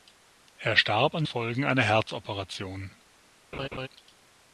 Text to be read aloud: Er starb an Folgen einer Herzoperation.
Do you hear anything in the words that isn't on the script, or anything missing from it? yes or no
no